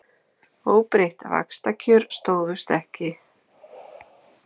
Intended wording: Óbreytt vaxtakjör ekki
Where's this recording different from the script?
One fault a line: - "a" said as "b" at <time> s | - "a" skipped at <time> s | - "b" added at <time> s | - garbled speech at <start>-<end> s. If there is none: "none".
- "stóðust" added at 2.2 s